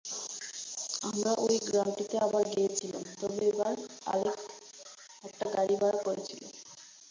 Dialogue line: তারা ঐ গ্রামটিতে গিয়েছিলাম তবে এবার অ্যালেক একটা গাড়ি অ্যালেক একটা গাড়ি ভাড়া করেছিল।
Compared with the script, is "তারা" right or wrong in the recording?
wrong